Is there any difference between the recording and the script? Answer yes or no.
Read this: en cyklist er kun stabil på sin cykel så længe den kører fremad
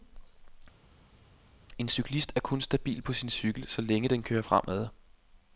no